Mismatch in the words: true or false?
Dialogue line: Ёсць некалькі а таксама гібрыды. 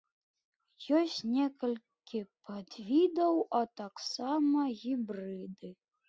true